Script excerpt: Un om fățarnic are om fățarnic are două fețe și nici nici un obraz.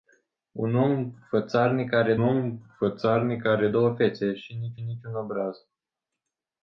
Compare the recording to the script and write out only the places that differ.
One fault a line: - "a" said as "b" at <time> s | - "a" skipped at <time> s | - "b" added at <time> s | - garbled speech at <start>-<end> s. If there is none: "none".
none